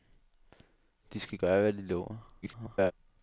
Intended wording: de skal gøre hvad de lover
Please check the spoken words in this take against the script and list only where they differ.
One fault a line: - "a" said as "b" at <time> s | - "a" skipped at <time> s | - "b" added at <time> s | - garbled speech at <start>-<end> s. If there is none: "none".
- garbled speech at 2.4-2.9 s